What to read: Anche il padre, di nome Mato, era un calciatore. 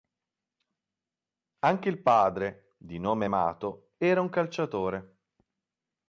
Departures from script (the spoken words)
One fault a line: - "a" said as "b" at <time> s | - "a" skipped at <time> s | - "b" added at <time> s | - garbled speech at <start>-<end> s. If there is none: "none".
none